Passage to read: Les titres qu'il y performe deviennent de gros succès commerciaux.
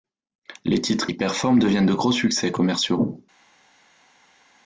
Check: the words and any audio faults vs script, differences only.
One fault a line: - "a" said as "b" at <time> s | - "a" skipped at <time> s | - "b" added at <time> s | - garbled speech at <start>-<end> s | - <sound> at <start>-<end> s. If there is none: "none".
- "qu'il" skipped at 1.1 s